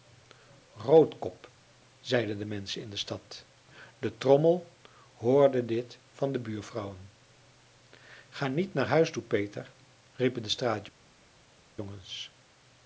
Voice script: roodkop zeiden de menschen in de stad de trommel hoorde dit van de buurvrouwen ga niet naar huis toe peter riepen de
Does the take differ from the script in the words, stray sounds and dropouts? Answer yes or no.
no